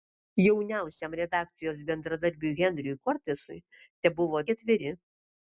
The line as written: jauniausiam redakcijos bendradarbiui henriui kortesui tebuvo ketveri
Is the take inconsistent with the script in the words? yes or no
no